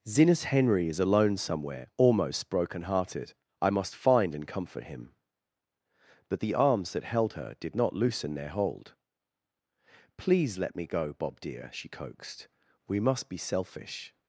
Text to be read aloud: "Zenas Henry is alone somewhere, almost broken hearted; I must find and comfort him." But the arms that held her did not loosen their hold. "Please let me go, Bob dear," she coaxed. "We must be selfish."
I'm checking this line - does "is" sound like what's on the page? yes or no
yes